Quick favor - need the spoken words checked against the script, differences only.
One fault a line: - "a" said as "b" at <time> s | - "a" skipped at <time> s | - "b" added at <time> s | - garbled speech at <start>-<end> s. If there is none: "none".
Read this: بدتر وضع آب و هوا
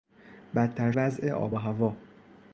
none